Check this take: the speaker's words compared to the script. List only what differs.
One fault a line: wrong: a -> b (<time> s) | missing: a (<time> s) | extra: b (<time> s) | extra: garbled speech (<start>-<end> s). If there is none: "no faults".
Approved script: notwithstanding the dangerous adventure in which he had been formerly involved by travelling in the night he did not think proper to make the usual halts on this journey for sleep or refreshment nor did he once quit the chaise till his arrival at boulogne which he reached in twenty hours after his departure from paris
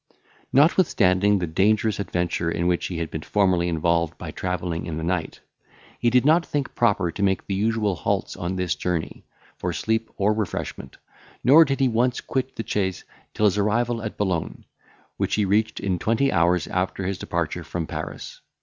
no faults